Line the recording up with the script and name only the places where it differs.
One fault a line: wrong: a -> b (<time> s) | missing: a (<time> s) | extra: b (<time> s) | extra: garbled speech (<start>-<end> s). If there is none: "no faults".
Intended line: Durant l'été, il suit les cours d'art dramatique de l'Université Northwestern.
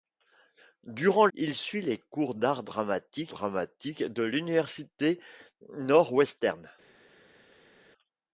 missing: l'été (1.3 s)
extra: dramatique (3.3 s)